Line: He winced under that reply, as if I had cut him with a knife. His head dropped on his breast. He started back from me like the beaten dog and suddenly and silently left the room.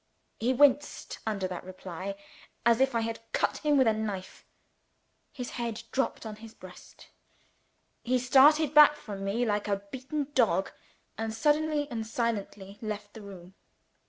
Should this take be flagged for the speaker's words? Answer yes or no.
yes